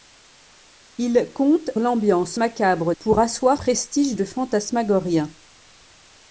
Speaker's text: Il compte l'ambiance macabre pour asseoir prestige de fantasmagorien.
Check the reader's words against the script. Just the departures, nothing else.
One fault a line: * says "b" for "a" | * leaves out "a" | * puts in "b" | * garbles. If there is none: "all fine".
all fine